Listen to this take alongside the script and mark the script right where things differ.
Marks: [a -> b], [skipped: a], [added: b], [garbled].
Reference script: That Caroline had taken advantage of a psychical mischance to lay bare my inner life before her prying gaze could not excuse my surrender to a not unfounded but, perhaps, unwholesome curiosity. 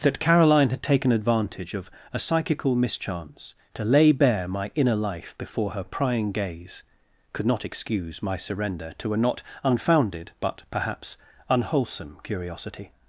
That Caroline had taken advantage of a psychical mischance to lay bare my inner life before her prying gaze could not excuse my surrender to a not unfounded but, perhaps, unwholesome curiosity.